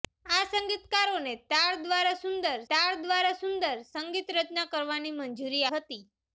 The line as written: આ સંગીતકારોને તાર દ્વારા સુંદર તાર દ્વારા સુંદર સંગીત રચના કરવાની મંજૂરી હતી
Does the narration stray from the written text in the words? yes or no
no